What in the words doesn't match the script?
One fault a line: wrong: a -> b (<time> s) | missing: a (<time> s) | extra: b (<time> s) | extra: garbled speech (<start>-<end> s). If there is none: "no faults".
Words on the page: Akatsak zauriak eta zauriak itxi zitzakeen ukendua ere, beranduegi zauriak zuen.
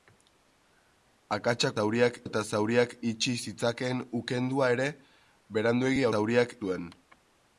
no faults